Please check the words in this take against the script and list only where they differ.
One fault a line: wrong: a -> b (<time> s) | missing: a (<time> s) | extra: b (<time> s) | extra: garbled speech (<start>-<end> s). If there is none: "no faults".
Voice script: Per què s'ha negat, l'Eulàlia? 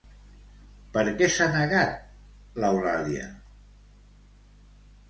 no faults